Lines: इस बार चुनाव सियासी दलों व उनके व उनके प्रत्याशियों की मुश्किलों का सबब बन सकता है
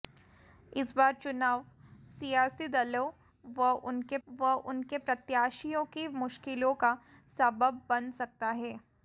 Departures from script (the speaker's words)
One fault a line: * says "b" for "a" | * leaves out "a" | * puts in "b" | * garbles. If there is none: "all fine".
all fine